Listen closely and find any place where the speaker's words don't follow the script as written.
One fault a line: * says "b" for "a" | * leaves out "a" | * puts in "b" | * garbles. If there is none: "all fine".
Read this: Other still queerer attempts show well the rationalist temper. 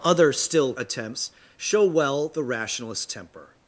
* leaves out "queerer"